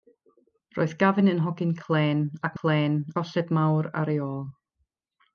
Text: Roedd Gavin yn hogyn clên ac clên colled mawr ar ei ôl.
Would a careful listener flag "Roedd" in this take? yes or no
no